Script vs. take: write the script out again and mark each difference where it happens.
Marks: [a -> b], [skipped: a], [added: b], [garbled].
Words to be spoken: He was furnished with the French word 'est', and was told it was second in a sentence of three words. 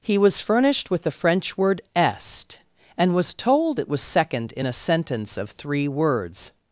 He was furnished with the French word 'est', and was told it was second in a sentence of three words.